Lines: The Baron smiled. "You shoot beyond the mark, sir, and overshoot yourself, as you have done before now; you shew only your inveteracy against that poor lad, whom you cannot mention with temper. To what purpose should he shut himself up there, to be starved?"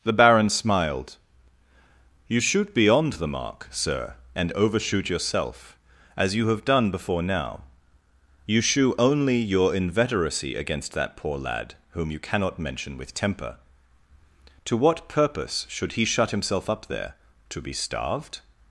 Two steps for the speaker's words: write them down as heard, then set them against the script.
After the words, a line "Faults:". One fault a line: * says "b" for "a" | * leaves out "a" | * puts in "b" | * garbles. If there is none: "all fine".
The Baron smiled. "You shoot beyond the mark, sir, and overshoot yourself, as you have done before now; you shew only your inveteracy against that poor lad, whom you cannot mention with temper. To what purpose should he shut himself up there, to be starved?"
Faults:
all fine